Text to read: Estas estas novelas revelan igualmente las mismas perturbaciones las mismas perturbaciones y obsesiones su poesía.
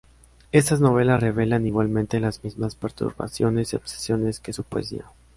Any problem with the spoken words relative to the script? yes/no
yes